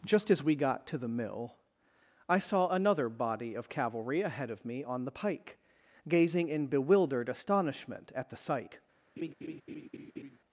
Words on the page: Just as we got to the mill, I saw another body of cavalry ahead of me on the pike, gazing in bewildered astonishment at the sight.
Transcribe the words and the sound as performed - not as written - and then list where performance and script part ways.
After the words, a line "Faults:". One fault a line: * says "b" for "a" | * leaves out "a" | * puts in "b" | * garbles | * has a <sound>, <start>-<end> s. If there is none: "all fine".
Just as we got to the mill, I saw another body of cavalry ahead of me on the pike, gazing in bewildered astonishment at the sight.
Faults:
* has a laugh, 9.2-10.4 s